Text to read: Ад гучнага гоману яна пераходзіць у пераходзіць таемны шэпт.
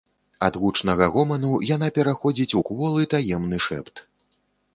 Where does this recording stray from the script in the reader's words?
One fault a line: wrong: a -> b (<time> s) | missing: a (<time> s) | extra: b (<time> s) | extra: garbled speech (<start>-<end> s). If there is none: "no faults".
wrong: пераходзіць -> кволы (2.7 s)